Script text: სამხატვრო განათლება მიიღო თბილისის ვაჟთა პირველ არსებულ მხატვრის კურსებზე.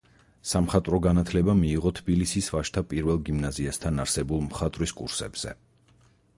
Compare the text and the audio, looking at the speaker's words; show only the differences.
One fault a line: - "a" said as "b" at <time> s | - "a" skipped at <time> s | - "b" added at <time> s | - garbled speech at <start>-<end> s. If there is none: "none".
- "გიმნაზიასთან" added at 3.3 s